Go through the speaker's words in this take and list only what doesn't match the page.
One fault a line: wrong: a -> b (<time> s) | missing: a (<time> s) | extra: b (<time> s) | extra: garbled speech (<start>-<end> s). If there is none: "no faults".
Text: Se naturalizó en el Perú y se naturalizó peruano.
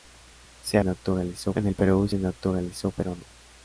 no faults